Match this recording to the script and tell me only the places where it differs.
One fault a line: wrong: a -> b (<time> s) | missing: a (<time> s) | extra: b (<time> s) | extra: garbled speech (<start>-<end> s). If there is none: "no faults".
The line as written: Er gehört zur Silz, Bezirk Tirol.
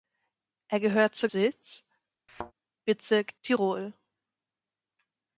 no faults